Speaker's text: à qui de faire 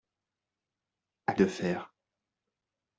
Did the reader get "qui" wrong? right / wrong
wrong